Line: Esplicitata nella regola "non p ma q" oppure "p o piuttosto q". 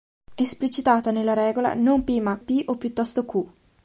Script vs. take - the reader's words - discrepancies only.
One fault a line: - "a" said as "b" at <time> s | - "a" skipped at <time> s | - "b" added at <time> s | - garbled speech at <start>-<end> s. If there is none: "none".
- "q oppure" skipped at 2.4 s